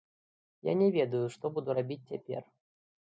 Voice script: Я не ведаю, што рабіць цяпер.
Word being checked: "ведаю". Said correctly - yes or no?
yes